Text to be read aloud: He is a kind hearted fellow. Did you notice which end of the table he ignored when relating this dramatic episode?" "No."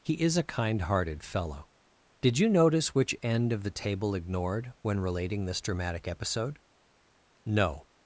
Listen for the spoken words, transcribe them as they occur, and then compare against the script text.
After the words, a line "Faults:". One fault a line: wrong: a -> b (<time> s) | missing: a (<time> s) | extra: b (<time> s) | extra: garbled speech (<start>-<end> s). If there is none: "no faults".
He is a kind hearted fellow. Did you notice which end of the table ignored when relating this dramatic episode?" "No."
Faults:
missing: he (4.2 s)